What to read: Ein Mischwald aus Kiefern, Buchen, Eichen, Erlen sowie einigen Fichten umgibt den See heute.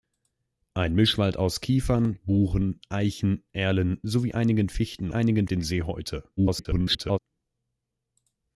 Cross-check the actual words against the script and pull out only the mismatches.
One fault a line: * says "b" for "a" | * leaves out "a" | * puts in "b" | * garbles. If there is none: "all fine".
* says "einigen" for "umgibt"
* garbles